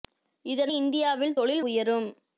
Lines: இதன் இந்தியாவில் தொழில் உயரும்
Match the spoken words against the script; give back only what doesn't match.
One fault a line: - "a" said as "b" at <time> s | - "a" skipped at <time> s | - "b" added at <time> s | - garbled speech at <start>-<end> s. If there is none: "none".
none